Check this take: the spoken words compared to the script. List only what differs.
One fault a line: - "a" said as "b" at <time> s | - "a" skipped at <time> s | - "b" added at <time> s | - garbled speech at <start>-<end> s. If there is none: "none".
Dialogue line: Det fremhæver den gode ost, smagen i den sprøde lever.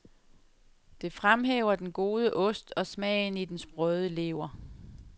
- "og" added at 2.8 s